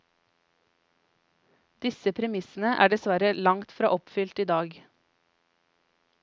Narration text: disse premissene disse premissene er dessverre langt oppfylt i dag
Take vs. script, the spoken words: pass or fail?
fail